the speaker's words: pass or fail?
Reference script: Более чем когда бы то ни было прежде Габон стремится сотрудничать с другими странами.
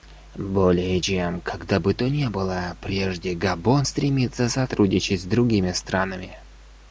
pass